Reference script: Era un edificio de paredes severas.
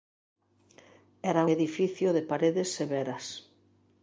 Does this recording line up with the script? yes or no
no